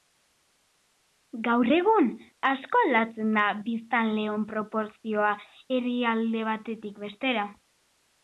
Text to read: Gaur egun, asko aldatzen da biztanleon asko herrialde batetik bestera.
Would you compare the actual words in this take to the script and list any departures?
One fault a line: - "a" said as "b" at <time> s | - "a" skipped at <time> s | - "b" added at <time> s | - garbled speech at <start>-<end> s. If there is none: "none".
- "asko" said as "proportzioa" at 4.5 s